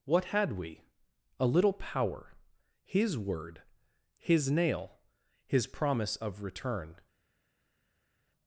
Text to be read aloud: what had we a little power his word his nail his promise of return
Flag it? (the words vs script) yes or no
no